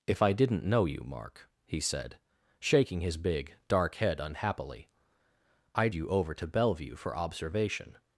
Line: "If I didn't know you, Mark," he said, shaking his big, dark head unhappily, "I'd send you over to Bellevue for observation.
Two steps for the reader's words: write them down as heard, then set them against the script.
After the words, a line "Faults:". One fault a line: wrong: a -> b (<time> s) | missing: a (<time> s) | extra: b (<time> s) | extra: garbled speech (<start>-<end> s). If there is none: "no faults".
"If I didn't know you, Mark," he said, shaking his big, dark head unhappily, "I'd you over to Bellevue for observation.
Faults:
missing: send (6.0 s)